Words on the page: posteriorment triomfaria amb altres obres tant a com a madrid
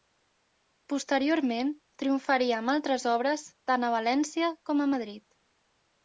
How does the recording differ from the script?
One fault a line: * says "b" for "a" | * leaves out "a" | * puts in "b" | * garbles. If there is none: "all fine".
* puts in "valència"